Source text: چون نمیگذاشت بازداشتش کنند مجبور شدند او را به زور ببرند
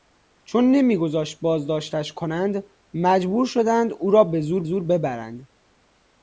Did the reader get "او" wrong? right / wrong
right